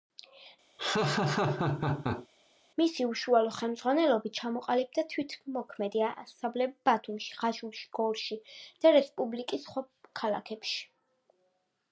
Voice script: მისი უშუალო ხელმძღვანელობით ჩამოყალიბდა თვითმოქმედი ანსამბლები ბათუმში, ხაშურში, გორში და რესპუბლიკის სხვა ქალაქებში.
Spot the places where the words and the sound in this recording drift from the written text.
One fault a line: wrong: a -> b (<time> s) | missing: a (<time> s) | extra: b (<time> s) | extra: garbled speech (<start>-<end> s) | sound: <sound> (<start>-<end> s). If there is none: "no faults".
sound: laugh (0.8-2.3 s)